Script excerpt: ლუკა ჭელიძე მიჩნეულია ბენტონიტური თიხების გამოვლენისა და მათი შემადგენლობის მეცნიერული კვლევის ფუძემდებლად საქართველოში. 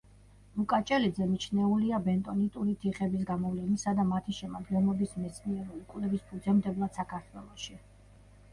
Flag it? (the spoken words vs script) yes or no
no